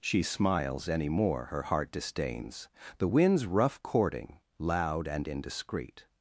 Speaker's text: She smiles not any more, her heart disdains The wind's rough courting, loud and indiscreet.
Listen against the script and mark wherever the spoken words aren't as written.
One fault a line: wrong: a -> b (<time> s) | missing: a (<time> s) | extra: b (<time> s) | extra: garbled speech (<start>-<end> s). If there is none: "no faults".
missing: not (0.9 s)